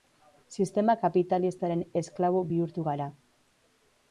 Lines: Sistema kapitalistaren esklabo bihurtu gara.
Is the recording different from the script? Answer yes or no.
no